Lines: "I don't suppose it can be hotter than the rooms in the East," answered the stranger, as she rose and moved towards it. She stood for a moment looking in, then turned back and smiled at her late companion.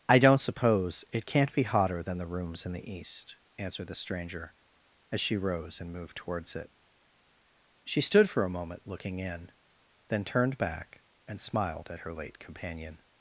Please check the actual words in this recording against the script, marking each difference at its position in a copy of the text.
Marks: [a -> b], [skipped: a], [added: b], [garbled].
"I don't suppose it [can -> can't] be hotter than the rooms in the East," answered the stranger, as she rose and moved towards it. She stood for a moment looking in, then turned back and smiled at her late companion.